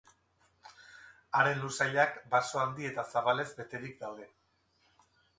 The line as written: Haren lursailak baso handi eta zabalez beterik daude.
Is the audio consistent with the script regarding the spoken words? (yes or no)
yes